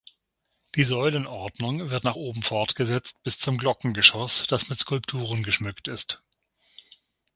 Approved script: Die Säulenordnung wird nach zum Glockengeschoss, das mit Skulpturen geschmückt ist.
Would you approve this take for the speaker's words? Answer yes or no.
no